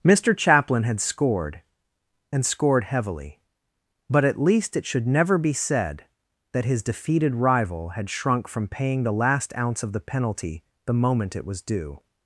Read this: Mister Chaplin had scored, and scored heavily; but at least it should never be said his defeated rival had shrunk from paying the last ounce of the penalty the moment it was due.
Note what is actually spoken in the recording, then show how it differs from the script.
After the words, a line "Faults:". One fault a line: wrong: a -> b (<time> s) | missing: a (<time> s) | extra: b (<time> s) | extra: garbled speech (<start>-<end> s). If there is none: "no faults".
Mister Chaplin had scored, and scored heavily; but at least it should never be said that his defeated rival had shrunk from paying the last ounce of the penalty the moment it was due.
Faults:
extra: that (6.5 s)